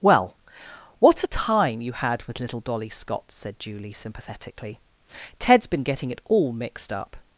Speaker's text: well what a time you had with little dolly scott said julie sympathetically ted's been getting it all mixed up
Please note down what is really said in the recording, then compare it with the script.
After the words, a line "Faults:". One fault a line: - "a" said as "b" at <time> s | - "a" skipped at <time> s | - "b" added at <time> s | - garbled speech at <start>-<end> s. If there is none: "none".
well what a time you had with little dolly scott said julie sympathetically ted's been getting it all mixed up
Faults:
none